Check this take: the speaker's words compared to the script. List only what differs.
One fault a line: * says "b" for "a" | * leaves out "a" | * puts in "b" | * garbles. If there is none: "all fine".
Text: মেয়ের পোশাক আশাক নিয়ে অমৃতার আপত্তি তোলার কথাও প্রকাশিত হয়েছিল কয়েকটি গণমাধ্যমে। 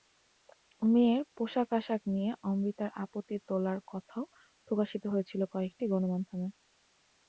all fine